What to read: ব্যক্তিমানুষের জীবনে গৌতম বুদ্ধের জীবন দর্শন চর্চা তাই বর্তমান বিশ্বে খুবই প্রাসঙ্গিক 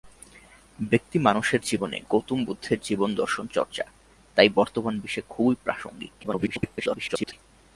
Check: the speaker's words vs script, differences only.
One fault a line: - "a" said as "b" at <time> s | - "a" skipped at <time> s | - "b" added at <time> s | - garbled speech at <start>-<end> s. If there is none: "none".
- garbled speech at 6.2-7.3 s